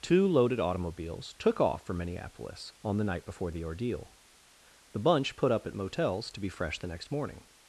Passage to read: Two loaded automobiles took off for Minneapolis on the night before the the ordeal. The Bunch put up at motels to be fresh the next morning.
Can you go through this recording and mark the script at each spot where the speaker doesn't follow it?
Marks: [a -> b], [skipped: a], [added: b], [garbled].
Two loaded automobiles took off for Minneapolis on the night before the [skipped: the] ordeal. The Bunch put up at motels to be fresh the next morning.